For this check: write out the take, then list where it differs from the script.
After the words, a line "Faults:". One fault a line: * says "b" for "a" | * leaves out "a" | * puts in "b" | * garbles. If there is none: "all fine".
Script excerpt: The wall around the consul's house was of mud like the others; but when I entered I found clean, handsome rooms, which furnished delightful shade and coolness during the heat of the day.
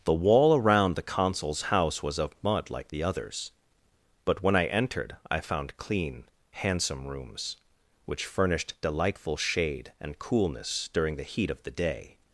The wall around the consul's house was of mud like the others; but when I entered I found clean, handsome rooms, which furnished delightful shade and coolness during the heat of the day.
Faults:
all fine